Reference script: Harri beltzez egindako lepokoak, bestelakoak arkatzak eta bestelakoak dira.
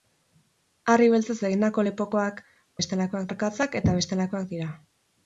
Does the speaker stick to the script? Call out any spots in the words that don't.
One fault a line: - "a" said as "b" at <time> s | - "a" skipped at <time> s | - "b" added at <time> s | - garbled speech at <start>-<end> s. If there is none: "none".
none